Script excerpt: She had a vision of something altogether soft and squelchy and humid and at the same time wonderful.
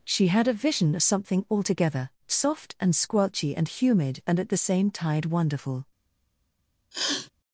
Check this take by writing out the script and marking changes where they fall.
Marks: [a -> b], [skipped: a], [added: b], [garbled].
She had a vision of something altogether soft and squelchy and humid and at the same [time -> tide] wonderful.